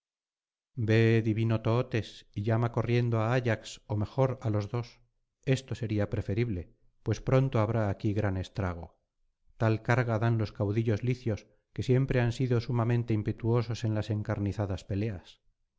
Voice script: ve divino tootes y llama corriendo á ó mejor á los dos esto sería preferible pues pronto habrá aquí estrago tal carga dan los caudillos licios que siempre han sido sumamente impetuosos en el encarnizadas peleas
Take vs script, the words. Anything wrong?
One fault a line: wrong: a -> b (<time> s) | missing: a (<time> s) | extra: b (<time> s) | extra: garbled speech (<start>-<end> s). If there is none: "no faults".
extra: ayax (3.4 s)
extra: gran (8.2 s)
wrong: el -> las (13.9 s)